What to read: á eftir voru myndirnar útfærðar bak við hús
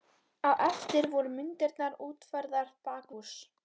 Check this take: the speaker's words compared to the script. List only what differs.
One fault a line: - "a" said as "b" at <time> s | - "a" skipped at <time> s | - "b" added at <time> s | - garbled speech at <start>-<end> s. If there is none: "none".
- "við" skipped at 3.1 s